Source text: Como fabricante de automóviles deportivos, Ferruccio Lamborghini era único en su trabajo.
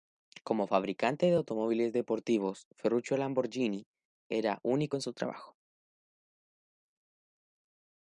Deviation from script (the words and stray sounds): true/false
false